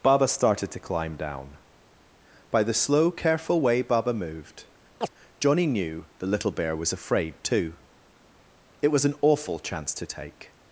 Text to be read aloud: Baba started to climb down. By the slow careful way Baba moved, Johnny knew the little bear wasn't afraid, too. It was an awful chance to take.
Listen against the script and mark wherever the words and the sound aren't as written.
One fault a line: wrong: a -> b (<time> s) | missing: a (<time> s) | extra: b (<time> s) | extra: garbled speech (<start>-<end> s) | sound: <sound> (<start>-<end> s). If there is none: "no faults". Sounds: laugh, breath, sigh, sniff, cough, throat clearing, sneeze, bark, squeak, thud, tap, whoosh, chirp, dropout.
sound: chirp (5.0-5.1 s)
wrong: wasn't -> was (6.8 s)